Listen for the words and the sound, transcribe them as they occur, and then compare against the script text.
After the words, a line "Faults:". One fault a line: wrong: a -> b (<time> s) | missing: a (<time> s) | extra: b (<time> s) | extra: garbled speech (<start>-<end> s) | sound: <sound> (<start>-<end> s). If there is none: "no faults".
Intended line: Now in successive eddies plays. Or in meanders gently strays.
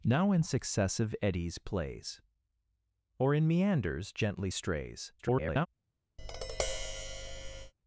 Now in successive eddies plays. Or in meanders gently strays. [garbled]
Faults:
extra: garbled speech (5.2-5.7 s)
sound: tap (6.2-7.7 s)